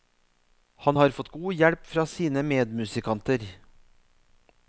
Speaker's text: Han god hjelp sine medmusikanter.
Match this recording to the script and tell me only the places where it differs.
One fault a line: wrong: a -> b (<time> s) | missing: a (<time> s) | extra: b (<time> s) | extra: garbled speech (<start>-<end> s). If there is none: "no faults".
extra: har fått (0.9 s)
extra: fra (1.9 s)